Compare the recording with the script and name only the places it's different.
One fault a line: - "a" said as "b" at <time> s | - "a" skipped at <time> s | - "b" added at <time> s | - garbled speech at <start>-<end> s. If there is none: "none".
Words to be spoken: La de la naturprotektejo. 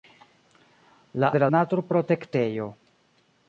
none